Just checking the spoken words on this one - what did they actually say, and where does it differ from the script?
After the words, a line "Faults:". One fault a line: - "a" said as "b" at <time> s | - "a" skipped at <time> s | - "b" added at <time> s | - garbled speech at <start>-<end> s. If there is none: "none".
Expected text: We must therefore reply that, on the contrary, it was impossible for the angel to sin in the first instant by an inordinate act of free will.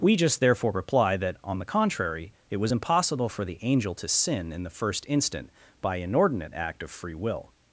We just therefore reply that, on the contrary, it was impossible for the angel to sin in the first instant by inordinate act of free will.
Faults:
- "must" said as "just" at 0.1 s
- "an" skipped at 6.0 s